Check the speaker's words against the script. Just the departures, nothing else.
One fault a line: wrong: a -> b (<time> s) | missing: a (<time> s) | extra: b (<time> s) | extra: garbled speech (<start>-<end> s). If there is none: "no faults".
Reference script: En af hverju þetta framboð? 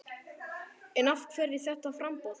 no faults